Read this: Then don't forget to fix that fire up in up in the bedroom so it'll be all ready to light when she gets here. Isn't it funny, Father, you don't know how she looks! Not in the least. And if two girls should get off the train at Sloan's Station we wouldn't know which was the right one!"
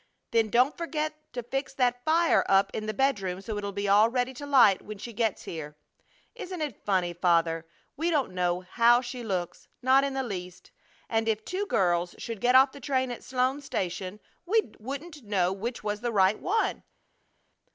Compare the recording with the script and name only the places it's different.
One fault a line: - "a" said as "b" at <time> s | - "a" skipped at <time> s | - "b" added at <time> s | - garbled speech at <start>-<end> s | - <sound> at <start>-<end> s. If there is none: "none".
- "up in" skipped at 2.9 s
- "you" said as "we" at 8.0 s